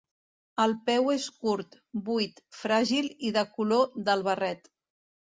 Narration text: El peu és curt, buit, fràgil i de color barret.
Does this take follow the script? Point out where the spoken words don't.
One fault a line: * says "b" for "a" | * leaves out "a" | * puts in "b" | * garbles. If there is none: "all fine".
* puts in "del"